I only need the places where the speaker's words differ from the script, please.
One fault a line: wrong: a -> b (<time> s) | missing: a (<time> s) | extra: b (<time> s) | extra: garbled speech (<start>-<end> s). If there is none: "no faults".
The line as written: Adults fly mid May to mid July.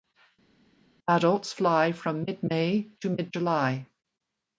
extra: from (1.9 s)